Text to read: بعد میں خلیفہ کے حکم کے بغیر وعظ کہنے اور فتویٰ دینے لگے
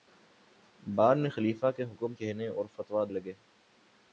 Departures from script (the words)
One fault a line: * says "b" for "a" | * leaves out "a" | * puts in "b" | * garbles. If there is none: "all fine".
* leaves out "کے بغیر وعظ"
* leaves out "دینے"